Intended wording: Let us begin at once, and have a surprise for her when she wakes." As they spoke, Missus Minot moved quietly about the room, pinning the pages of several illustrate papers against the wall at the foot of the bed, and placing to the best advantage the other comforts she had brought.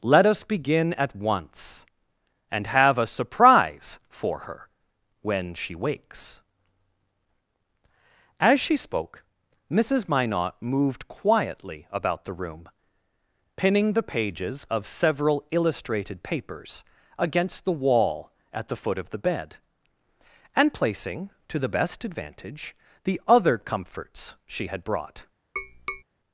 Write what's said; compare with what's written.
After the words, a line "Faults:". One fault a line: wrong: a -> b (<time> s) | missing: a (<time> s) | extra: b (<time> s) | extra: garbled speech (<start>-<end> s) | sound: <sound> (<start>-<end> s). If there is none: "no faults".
Let us begin at once, and have a surprise for her when she wakes." As she spoke, Missus Minot moved quietly about the room, pinning the pages of several illustrated papers against the wall at the foot of the bed, and placing to the best advantage the other comforts she had brought.
Faults:
wrong: they -> she (8.6 s)
wrong: illustrate -> illustrated (15.5 s)
sound: tap (25.6-26.0 s)